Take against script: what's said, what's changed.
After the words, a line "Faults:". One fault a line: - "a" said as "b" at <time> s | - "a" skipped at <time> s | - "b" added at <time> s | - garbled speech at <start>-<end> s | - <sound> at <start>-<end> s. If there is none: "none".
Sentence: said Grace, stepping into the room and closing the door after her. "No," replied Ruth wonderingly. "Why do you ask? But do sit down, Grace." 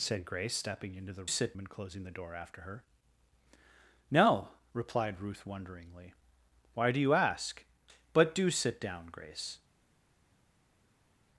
said Grace, stepping into the sit and closing the door after her. "No," replied Ruth wonderingly. "Why do you ask? But do sit down, Grace."
Faults:
- "room" said as "sit" at 1.2 s